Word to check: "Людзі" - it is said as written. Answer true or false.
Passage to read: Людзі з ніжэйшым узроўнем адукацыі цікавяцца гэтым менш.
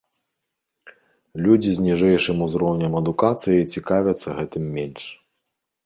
true